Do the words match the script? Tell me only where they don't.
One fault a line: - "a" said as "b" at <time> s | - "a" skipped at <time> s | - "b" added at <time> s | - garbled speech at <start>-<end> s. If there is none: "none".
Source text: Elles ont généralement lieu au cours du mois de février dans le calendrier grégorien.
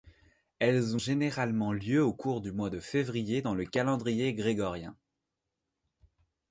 - "ont" skipped at 1.0 s